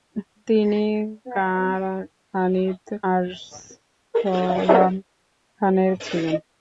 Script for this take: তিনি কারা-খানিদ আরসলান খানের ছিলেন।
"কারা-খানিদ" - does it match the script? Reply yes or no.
yes